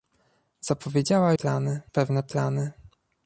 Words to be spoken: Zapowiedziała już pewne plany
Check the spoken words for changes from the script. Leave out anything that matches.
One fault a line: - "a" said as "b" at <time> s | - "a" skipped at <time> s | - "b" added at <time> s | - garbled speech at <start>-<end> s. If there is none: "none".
- "już" said as "plany" at 1.3 s